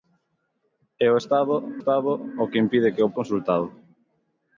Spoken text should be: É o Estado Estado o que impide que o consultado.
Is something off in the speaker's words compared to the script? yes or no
no